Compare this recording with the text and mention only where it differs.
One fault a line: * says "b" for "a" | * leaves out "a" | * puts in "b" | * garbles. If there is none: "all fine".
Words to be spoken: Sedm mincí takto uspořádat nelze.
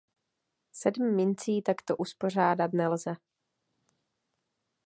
all fine